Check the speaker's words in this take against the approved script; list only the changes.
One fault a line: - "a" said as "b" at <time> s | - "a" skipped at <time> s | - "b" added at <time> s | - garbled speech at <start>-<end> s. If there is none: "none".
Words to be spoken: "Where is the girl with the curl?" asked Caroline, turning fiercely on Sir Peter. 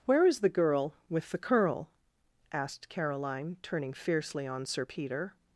none